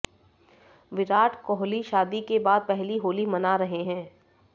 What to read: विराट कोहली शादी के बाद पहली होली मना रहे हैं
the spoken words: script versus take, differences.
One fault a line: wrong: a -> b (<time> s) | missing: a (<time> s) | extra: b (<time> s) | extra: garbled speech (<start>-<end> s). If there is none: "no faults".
no faults